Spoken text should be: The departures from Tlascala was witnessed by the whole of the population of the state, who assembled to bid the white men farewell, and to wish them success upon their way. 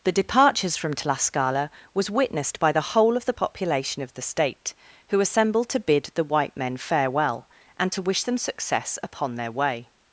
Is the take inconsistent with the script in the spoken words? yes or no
no